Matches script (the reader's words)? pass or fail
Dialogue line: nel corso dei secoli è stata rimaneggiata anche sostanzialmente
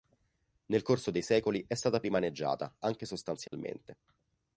pass